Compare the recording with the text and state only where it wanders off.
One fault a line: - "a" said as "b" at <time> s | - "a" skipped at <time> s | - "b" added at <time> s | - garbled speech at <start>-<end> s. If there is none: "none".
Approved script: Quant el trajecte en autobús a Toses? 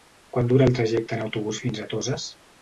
- "dura" added at 0.5 s
- "fins" added at 1.7 s